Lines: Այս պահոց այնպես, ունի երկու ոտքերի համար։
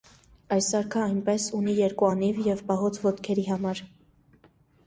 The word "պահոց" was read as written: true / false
false